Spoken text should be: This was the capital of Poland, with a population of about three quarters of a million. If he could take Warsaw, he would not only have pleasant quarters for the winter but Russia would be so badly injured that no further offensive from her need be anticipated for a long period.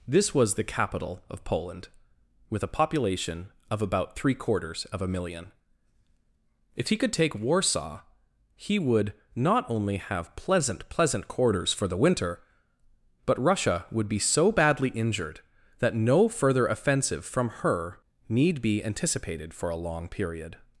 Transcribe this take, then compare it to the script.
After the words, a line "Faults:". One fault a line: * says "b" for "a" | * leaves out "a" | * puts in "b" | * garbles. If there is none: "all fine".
This was the capital of Poland, with a population of about three quarters of a million. If he could take Warsaw, he would not only have pleasant pleasant quarters for the winter but Russia would be so badly injured that no further offensive from her need be anticipated for a long period.
Faults:
* puts in "pleasant"